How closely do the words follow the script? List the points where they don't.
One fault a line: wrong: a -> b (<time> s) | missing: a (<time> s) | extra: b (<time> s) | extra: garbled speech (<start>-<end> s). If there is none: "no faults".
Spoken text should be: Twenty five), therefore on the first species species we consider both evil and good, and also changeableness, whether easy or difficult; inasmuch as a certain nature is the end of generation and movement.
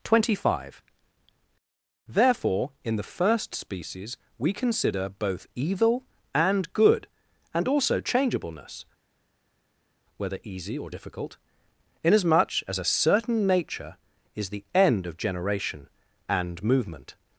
wrong: on -> in (2.8 s)
missing: species (4.2 s)